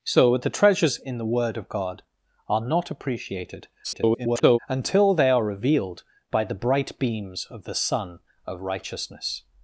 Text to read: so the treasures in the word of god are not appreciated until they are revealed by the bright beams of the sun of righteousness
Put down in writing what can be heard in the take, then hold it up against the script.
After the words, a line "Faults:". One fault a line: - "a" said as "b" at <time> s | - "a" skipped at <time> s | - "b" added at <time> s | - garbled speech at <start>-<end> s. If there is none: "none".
so the treasures in the word of god are not appreciated [garbled] until they are revealed by the bright beams of the sun of righteousness
Faults:
- garbled speech at 3.8-4.6 s